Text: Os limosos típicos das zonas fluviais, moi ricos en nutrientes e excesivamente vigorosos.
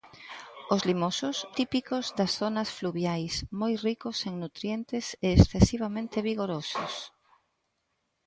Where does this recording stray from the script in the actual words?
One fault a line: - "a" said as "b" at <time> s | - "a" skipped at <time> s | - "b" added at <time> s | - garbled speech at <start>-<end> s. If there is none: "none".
none